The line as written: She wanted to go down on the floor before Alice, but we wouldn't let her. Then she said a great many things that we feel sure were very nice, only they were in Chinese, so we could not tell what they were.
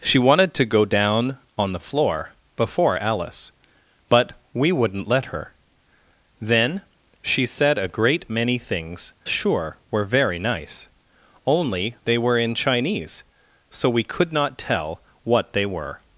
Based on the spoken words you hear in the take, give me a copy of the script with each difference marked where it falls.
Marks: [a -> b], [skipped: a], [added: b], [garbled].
She wanted to go down on the floor before Alice, but we wouldn't let her. Then she said a great many things [skipped: that we feel] sure were very nice, only they were in Chinese, so we could not tell what they were.